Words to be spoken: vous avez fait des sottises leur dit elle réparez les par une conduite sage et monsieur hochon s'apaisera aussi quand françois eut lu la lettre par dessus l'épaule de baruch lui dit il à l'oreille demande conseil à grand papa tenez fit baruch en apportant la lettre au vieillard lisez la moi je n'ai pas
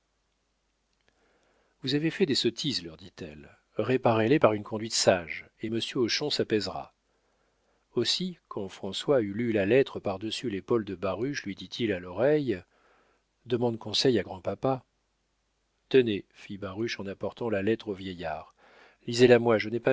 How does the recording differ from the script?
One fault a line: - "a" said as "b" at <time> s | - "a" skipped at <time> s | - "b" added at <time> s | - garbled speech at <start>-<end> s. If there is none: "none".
none